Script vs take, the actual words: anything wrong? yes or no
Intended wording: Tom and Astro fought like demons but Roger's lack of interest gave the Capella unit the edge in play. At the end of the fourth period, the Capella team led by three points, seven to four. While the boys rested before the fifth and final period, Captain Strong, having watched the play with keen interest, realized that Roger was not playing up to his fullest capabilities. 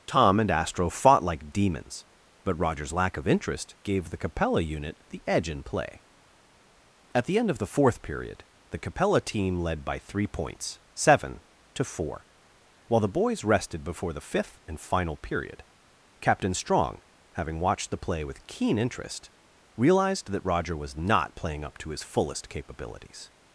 no